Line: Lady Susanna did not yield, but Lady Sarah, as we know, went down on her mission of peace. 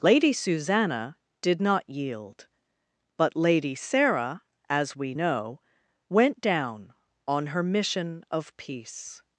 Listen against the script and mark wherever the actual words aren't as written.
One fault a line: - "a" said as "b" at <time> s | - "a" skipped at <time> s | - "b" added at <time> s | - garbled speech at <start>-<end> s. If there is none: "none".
none